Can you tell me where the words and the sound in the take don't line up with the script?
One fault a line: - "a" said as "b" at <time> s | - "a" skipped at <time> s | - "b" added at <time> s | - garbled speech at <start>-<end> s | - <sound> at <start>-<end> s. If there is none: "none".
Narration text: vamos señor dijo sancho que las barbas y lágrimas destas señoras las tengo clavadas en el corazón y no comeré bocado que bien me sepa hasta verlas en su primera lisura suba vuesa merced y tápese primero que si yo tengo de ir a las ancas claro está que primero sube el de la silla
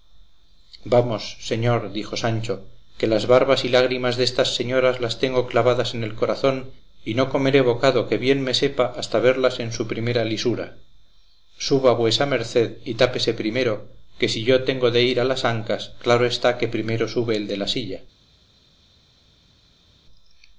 none